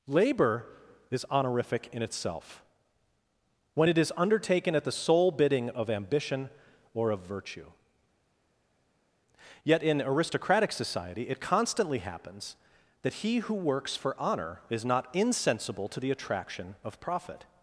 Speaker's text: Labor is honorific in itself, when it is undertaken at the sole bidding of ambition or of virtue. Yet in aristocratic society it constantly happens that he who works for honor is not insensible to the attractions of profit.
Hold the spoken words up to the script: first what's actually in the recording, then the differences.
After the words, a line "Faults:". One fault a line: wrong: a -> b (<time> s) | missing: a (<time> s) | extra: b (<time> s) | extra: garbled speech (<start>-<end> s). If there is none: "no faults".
Labor is honorific in itself, when it is undertaken at the sole bidding of ambition or of virtue. Yet in aristocratic society it constantly happens that he who works for honor is not insensible to the attraction of profit.
Faults:
wrong: attractions -> attraction (16.1 s)